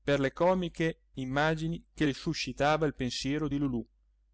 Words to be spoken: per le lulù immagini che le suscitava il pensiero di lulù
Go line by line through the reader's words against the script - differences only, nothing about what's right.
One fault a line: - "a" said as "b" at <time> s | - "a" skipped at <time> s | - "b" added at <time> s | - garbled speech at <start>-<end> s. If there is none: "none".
- "lulù" said as "comiche" at 0.3 s